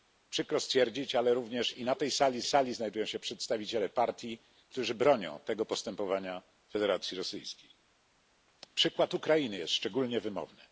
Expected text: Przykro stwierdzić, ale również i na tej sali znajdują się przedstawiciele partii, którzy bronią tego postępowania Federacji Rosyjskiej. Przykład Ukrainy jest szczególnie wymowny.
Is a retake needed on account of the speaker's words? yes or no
yes